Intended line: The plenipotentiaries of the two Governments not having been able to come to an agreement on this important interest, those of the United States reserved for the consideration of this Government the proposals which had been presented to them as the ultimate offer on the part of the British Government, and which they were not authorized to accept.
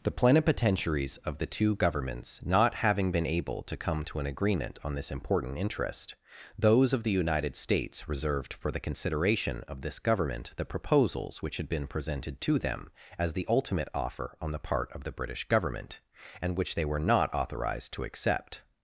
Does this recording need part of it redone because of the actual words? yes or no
no